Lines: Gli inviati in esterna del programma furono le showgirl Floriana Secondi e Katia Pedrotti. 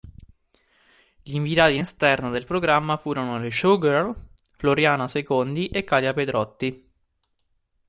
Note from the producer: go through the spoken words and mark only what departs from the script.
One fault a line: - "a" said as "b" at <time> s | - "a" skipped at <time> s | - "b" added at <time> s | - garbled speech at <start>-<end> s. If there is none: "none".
none